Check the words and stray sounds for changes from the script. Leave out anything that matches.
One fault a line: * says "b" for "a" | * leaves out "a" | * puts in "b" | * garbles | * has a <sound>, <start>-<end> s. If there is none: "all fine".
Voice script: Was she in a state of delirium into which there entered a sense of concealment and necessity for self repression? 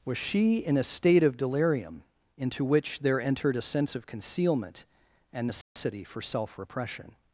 * has a dropout, 5.6-5.8 s